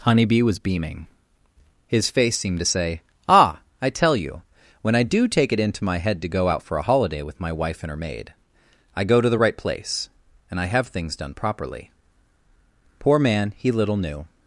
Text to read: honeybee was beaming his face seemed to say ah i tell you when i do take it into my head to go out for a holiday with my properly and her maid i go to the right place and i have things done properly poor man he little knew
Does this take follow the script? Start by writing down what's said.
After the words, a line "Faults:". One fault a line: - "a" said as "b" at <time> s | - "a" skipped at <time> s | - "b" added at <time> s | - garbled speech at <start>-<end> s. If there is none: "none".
honeybee was beaming his face seemed to say ah i tell you when i do take it into my head to go out for a holiday with my wife and her maid i go to the right place and i have things done properly poor man he little knew
Faults:
- "properly" said as "wife" at 7.5 s